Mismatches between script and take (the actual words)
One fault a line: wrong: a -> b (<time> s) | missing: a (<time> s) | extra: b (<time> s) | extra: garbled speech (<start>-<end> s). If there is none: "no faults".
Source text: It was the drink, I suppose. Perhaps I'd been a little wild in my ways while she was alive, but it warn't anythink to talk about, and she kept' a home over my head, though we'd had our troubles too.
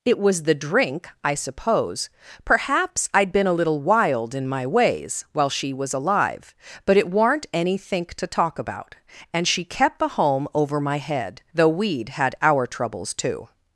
no faults